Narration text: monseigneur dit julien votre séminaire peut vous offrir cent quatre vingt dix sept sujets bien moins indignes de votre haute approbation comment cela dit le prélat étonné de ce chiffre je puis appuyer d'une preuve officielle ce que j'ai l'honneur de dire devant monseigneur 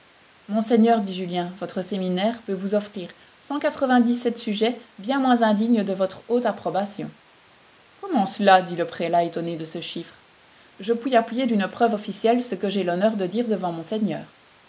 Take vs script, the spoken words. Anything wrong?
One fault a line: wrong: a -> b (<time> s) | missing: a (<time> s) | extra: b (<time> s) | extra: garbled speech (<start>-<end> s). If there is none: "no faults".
no faults